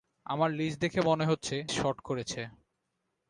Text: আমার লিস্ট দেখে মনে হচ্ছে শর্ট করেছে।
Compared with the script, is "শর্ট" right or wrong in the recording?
right